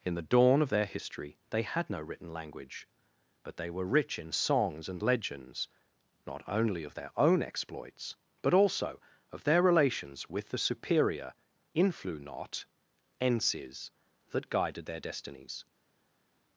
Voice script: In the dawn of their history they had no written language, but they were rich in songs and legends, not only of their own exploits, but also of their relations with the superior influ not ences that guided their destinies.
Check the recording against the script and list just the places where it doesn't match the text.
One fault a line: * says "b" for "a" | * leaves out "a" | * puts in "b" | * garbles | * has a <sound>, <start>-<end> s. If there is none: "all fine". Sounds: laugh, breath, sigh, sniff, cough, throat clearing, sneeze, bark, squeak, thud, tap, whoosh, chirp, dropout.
all fine